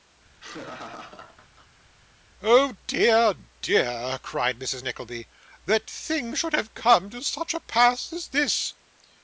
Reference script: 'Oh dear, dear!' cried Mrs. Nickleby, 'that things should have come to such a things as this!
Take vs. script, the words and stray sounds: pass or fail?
fail